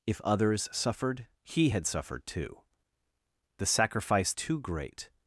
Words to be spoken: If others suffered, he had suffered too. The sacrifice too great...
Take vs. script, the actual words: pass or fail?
pass